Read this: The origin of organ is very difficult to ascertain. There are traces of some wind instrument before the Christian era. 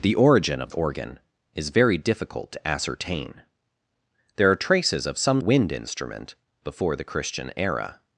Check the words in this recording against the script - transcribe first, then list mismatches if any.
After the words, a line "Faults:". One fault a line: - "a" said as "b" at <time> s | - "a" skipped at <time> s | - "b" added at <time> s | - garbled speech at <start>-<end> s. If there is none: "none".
The origin of organ is very difficult to ascertain. There are traces of some wind instrument before the Christian era.
Faults:
none